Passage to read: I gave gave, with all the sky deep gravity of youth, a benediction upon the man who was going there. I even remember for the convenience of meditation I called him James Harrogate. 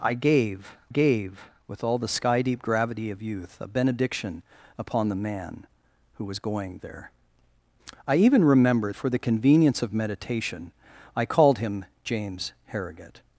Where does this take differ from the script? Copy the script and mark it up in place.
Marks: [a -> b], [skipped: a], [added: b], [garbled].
I gave gave, with all the sky deep gravity of youth, a benediction upon the man who was going there. I even remember for the convenience of meditation I called him James Harrogate.